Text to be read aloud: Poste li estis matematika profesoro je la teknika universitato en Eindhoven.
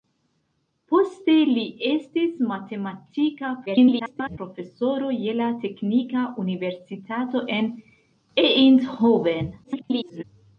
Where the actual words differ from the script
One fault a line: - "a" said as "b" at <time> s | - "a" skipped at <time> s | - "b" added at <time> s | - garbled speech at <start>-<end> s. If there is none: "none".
- garbled speech at 3.7-4.4 s
- garbled speech at 9.6-10.2 s